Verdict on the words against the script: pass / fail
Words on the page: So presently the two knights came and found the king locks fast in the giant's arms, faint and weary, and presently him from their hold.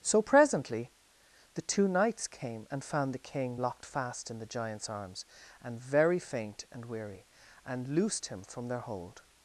fail